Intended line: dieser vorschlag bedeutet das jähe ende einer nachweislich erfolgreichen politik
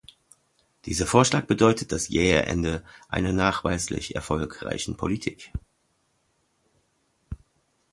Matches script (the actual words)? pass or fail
pass